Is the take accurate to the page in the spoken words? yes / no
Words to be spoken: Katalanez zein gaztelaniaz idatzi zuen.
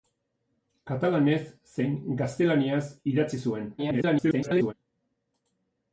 no